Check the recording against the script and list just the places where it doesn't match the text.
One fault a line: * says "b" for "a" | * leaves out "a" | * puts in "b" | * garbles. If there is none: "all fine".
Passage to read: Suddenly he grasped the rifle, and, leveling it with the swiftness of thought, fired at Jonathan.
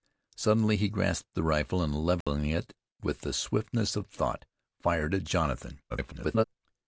* garbles